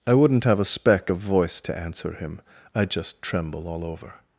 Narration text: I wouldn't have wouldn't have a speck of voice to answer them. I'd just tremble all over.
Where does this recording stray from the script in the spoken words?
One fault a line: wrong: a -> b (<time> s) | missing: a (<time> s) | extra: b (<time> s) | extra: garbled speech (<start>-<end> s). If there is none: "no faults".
missing: wouldn't have (0.6 s)
wrong: them -> him (2.1 s)